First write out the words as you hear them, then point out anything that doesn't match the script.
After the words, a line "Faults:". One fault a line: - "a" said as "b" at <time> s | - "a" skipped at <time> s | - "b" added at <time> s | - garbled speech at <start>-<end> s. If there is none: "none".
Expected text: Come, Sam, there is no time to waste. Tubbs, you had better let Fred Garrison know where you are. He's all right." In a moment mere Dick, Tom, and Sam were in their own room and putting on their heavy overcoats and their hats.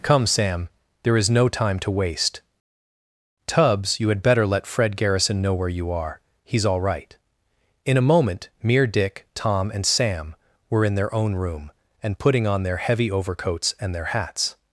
Come, Sam, there is no time to waste. Tubbs, you had better let Fred Garrison know where you are. He's all right." In a moment mere Dick, Tom, and Sam were in their own room and putting on their heavy overcoats and their hats.
Faults:
none